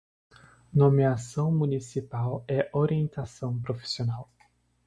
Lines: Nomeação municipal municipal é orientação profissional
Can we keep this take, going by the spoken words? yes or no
no